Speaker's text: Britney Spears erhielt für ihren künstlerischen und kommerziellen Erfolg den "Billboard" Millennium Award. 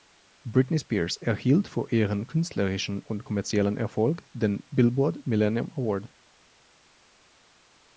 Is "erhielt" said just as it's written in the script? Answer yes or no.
yes